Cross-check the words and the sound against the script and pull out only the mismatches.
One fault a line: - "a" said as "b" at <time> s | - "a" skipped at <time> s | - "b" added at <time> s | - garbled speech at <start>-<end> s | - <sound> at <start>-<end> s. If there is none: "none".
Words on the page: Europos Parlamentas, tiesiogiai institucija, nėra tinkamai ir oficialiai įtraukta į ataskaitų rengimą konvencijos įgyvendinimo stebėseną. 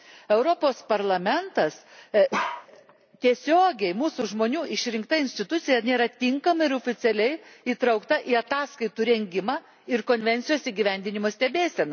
- bark at 2.3-2.7 s
- "mūsų žmonių išrinkta" added at 4.0 s
- "ir" added at 9.9 s